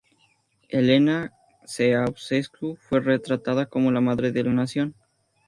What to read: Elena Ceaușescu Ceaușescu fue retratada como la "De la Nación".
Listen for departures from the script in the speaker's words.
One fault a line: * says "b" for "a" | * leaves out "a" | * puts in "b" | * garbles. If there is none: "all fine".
* leaves out "Ceaușescu"
* puts in "Madre"